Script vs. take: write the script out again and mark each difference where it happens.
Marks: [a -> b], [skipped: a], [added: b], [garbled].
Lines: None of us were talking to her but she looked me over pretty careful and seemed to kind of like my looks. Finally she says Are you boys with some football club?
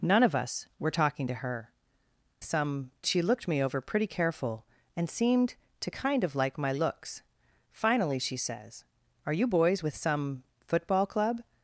None of us were talking to her [but -> some] she looked me over pretty careful and seemed to kind of like my looks. Finally she says Are you boys with some football club?